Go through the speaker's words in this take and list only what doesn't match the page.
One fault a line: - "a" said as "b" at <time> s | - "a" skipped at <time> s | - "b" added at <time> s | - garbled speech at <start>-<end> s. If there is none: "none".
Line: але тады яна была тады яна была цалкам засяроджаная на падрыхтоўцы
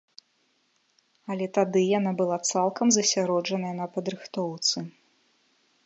- "тады яна была" skipped at 2.4 s